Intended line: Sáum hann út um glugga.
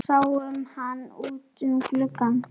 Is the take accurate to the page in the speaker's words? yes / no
yes